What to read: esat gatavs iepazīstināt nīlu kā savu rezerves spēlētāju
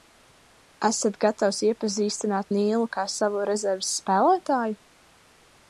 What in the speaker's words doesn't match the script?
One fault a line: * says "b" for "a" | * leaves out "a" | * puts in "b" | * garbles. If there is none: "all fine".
all fine